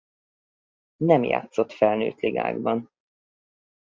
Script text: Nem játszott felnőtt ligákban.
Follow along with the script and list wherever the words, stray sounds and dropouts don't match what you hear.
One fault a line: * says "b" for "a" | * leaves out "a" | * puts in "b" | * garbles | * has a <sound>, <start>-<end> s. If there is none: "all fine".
all fine